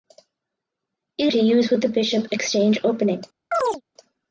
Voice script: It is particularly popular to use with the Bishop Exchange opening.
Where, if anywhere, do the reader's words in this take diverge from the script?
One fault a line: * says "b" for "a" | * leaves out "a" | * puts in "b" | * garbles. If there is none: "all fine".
* leaves out "is particularly popular"